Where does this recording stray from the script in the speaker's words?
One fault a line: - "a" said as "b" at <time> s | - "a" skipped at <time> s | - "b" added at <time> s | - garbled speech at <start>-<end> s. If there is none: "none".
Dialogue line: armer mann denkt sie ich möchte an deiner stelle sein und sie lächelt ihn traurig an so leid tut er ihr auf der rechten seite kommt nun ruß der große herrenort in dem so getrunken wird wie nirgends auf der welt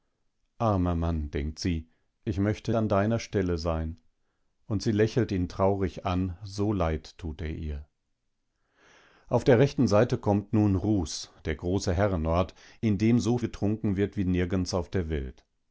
none